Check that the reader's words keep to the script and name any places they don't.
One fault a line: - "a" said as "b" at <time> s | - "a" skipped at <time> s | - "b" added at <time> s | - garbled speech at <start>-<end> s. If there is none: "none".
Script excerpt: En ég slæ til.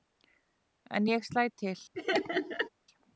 none